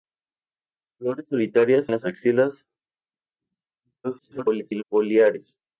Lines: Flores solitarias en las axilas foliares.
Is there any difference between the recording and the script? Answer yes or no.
yes